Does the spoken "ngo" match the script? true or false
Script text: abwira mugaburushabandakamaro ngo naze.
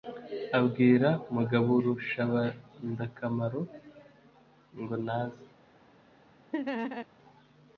true